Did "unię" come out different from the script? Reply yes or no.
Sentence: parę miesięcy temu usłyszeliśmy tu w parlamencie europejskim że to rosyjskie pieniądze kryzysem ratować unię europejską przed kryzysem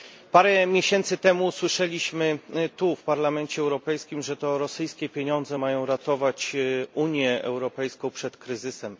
no